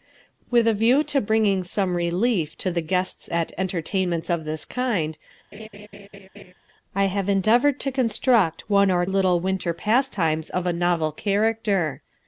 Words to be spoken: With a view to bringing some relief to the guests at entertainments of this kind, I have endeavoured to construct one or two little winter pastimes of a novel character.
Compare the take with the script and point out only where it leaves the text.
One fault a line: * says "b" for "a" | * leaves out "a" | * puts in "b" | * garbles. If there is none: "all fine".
* leaves out "two"